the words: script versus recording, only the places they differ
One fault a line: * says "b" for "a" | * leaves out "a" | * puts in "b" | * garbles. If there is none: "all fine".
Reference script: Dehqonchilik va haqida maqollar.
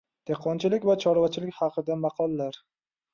* puts in "chorvachilik"